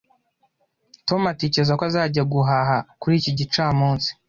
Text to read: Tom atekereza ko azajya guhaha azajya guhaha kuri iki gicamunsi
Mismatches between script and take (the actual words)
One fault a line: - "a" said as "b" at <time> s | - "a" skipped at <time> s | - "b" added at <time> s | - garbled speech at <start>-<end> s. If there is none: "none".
- "azajya guhaha" skipped at 2.8 s